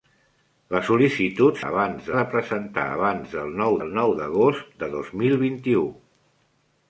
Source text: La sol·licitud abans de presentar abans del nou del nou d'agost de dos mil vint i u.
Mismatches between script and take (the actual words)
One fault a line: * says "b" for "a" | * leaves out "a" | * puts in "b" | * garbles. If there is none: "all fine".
all fine